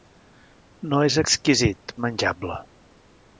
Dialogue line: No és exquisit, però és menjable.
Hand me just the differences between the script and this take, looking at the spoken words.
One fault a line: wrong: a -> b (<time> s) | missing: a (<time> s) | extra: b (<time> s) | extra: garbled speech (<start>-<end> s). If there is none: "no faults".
missing: però (2.0 s)